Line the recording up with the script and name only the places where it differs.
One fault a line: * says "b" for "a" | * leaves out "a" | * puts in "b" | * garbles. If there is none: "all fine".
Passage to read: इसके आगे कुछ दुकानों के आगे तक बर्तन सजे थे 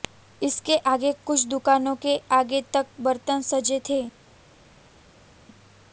all fine